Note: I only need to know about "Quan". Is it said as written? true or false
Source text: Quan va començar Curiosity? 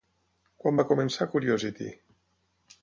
true